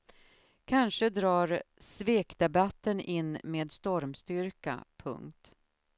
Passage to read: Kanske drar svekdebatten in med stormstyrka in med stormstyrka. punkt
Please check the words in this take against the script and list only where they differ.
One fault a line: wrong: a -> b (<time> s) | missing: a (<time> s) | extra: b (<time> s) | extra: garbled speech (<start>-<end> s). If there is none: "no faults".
missing: in med stormstyrka (4.8 s)